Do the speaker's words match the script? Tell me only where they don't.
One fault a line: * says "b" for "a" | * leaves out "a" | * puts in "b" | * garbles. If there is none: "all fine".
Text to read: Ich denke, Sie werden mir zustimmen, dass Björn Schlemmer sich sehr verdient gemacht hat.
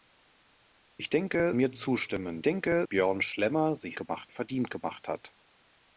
* leaves out "Sie werden"
* says "denke" for "dass"
* says "gemacht" for "sehr"